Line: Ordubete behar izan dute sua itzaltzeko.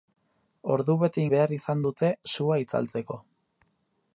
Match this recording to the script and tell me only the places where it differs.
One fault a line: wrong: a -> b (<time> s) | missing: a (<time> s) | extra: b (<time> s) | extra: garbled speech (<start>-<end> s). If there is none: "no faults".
no faults